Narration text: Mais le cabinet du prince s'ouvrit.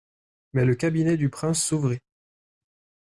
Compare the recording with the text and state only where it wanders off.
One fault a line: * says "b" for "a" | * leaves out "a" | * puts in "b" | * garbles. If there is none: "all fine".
all fine